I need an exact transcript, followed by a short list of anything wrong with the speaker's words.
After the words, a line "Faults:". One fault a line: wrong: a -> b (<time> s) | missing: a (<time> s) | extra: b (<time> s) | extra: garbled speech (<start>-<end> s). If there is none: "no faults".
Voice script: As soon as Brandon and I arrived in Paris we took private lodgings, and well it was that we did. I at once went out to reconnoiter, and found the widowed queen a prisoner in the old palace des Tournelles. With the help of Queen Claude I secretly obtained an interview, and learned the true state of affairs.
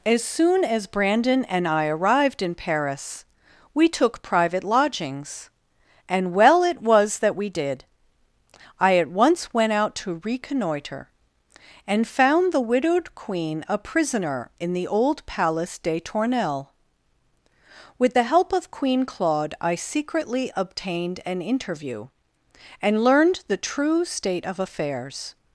As soon as Brandon and I arrived in Paris we took private lodgings, and well it was that we did. I at once went out to reconnoiter, and found the widowed queen a prisoner in the old palace des Tournelles. With the help of Queen Claude I secretly obtained an interview, and learned the true state of affairs.
Faults:
no faults